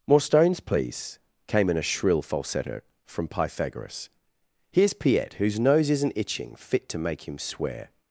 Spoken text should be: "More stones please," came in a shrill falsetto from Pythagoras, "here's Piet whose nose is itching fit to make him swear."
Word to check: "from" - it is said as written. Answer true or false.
true